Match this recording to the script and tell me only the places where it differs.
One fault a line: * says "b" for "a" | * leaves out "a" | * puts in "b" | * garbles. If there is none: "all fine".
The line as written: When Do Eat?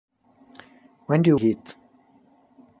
all fine